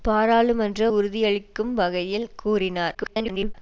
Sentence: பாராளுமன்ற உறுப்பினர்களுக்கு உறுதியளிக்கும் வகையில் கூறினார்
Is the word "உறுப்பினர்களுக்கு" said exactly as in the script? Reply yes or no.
no